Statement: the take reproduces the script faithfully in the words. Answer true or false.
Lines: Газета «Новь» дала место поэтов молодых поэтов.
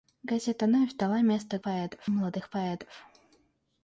true